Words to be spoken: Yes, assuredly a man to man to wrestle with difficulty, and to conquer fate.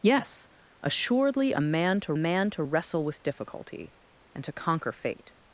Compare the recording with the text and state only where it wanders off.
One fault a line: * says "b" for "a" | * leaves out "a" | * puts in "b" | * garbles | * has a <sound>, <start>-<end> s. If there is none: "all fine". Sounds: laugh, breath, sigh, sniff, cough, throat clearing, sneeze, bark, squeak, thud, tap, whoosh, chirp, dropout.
all fine